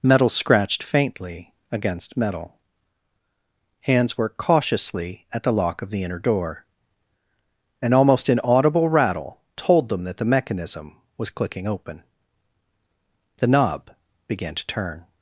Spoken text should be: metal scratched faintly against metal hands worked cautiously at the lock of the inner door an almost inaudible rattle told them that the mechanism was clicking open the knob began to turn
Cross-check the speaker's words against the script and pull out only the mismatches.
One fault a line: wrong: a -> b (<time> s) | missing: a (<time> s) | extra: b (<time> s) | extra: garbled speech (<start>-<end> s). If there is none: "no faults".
no faults